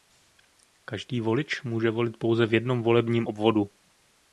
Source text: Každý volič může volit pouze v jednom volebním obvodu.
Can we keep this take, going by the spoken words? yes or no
yes